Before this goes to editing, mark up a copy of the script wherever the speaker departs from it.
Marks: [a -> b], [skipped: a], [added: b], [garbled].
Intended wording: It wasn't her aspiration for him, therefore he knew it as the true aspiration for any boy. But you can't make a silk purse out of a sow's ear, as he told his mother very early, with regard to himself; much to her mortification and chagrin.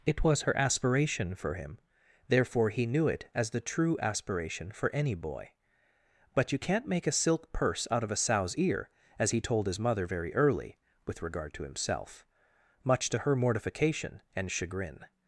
It [wasn't -> was] her aspiration for him, therefore he knew it as the true aspiration for any boy. But you can't make a silk purse out of a sow's ear, as he told his mother very early, with regard to himself; much to her mortification and chagrin.